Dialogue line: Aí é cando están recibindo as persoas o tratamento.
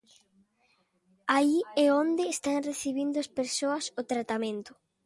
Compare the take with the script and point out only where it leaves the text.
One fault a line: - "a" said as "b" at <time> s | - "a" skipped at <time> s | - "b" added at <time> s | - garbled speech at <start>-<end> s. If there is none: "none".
- "cando" said as "onde" at 2.0 s